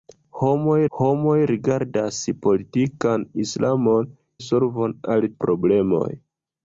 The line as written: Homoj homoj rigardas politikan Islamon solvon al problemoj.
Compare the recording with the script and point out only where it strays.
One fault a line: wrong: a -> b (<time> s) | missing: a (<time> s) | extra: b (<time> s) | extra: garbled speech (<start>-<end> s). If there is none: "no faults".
no faults